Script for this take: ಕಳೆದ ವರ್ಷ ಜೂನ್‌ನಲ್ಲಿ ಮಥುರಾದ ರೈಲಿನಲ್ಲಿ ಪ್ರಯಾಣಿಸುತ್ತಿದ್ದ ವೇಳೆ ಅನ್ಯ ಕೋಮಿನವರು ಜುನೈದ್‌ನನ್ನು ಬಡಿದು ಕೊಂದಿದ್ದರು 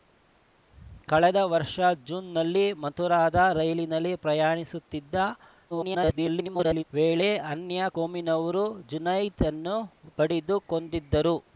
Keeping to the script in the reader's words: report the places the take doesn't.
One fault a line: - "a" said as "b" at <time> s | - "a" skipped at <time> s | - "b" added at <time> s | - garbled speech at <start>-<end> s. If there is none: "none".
- garbled speech at 5.7-6.8 s